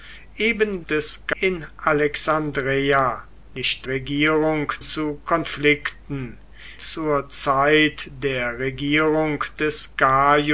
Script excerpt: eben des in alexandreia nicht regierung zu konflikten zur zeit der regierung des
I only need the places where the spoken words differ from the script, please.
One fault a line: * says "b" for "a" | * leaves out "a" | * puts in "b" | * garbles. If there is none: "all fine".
all fine